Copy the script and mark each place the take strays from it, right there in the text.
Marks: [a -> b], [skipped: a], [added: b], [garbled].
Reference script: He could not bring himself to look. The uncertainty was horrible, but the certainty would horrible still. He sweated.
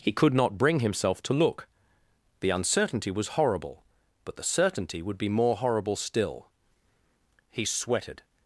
He could not bring himself to look. The uncertainty was horrible, but the certainty would [added: be more] horrible still. He sweated.